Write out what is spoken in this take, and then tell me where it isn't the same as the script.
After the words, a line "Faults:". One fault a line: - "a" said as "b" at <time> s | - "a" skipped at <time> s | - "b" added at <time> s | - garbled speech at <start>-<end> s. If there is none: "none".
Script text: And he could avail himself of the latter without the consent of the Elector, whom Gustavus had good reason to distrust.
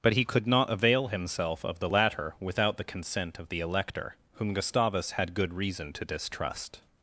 But he could not avail himself of the latter without the consent of the Elector, whom Gustavus had good reason to distrust.
Faults:
- "And" said as "But" at 0.0 s
- "not" added at 0.5 s